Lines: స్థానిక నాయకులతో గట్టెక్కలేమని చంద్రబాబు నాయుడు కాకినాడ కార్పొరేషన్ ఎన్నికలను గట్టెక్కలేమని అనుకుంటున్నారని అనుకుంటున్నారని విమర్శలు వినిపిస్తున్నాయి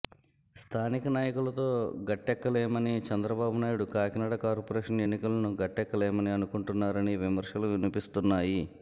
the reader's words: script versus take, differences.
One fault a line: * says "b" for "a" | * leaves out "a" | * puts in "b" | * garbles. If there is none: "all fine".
* leaves out "అనుకుంటున్నారని"